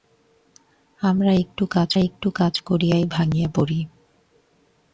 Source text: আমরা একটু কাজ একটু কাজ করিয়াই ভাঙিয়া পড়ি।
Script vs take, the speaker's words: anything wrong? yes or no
no